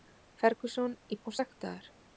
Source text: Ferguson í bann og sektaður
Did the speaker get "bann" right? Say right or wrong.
wrong